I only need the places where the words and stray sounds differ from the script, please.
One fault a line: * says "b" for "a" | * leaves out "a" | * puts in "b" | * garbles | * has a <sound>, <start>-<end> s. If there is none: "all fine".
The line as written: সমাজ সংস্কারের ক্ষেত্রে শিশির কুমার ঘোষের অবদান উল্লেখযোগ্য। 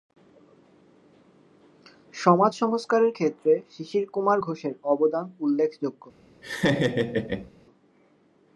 * has a laugh, 6.4-7.5 s